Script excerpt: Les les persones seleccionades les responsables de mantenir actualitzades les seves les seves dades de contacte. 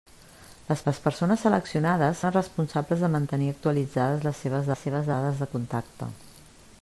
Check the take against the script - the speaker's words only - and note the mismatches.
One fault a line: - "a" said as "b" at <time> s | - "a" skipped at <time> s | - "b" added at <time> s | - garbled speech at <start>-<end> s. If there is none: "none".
none